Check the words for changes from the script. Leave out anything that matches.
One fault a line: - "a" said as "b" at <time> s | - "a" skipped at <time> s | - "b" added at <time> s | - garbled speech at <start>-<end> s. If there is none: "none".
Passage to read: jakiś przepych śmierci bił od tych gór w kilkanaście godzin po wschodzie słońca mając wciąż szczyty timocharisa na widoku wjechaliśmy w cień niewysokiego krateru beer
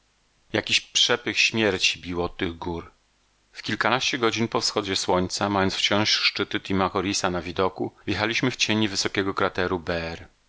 none